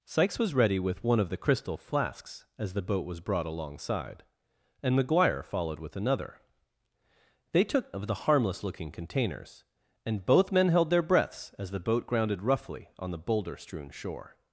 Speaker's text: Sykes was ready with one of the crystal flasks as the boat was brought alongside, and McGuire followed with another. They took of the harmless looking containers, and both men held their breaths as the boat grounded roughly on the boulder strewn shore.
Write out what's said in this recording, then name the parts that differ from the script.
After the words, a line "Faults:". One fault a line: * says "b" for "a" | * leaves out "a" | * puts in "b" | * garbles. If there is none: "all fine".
Sykes was ready with one of the crystal flasks as the boat was brought alongside, and McGuire followed with another. They took of the harmless looking containers, and both men held their breaths as the boat grounded roughly on the boulder strewn shore.
Faults:
all fine